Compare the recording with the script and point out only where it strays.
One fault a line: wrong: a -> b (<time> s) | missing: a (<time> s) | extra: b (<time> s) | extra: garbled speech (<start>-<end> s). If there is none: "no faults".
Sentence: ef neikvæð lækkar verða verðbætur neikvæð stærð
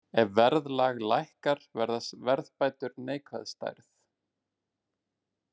wrong: neikvæð -> verðlag (0.4 s)